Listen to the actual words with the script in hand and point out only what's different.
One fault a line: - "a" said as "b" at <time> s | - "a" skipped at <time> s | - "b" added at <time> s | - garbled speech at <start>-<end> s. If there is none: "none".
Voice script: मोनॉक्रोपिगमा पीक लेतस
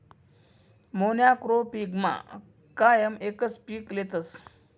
- "कायम एकच" added at 2.8 s